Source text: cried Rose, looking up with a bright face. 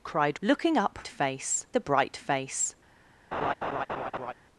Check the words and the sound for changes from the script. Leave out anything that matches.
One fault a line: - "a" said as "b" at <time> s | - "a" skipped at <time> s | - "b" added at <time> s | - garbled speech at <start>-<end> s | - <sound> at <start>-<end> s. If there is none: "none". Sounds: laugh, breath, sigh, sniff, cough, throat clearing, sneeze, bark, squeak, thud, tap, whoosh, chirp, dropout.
- "Rose" skipped at 0.4 s
- "with" said as "face" at 1.1 s
- laugh at 3.3-4.3 s